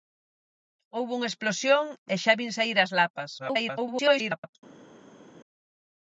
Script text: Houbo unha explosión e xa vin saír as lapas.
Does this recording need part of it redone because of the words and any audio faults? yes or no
yes